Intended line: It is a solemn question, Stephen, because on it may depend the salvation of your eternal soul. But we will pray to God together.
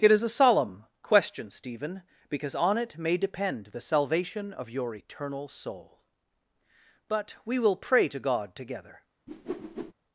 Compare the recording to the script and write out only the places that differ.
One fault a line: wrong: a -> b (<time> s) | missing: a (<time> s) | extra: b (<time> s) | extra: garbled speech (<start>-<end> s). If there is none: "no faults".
no faults